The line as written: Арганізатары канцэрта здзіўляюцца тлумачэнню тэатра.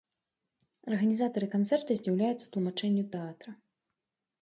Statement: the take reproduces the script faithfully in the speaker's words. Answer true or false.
true